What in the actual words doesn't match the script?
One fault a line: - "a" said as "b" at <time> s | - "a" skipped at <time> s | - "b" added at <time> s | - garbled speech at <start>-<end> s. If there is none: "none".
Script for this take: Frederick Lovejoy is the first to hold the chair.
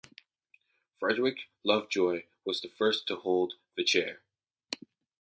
- "is" said as "was" at 2.4 s